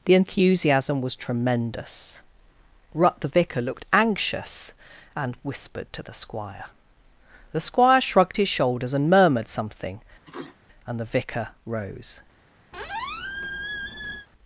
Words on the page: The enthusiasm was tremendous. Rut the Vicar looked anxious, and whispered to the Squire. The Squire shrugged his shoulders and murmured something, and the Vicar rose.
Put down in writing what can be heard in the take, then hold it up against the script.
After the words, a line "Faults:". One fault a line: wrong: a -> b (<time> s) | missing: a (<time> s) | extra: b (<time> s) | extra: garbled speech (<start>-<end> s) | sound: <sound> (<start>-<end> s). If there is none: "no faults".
The enthusiasm was tremendous. Rut the Vicar looked anxious, and whispered to the Squire. The Squire shrugged his shoulders and murmured something, and the Vicar rose.
Faults:
sound: sneeze (10.3-10.6 s)
sound: squeak (12.7-14.3 s)